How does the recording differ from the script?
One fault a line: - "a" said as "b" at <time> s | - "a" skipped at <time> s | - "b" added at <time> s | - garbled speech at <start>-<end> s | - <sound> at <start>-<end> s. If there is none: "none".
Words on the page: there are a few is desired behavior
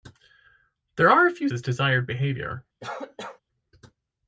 - cough at 2.8-3.4 s